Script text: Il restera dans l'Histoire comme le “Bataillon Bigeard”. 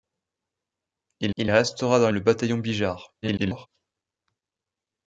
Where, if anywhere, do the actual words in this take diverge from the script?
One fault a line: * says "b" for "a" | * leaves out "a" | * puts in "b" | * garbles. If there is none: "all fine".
* puts in "il"
* leaves out "l'Histoire comme"
* garbles